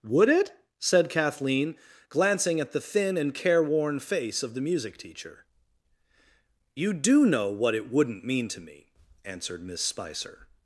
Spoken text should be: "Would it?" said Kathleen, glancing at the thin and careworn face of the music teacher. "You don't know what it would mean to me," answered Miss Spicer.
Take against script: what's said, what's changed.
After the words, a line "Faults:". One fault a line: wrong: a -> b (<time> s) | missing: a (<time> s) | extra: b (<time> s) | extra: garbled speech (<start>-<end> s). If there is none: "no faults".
"Would it?" said Kathleen, glancing at the thin and careworn face of the music teacher. "You do know what it wouldn't mean to me," answered Miss Spicer.
Faults:
wrong: don't -> do (6.9 s)
wrong: would -> wouldn't (7.9 s)